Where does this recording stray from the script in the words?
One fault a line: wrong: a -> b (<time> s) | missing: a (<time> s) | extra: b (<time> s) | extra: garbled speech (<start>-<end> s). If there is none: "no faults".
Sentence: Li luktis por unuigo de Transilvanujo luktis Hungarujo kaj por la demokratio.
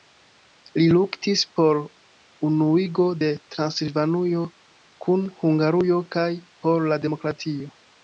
wrong: luktis -> kun (5.1 s)